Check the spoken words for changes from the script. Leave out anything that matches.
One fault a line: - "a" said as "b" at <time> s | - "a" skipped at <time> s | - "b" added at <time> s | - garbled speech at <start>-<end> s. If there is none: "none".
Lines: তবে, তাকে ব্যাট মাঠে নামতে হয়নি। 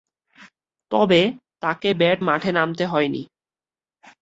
none